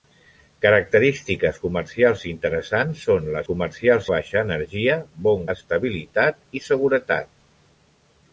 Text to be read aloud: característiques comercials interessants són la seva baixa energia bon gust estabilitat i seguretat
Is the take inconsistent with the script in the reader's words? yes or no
yes